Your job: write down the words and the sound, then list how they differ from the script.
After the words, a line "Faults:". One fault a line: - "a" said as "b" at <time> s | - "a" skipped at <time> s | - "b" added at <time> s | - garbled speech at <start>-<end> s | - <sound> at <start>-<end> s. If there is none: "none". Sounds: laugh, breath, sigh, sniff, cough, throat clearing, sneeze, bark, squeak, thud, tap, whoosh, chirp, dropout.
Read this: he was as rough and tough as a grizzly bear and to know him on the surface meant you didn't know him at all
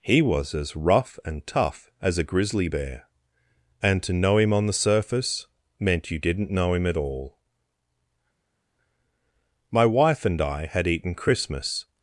he was as rough and tough as a grizzly bear and to know him on the surface meant you didn't know him at all my wife and i had eaten christmas
Faults:
- "my wife and i had eaten christmas" added at 9.7 s